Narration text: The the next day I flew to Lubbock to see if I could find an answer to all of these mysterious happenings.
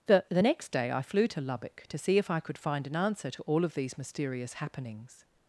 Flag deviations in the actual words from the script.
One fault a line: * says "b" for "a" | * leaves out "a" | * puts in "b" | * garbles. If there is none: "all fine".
all fine